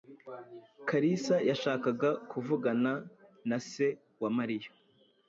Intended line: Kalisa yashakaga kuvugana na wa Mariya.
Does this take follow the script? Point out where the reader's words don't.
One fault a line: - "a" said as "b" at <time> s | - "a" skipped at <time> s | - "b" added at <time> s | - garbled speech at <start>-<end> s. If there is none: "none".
- "se" added at 3.7 s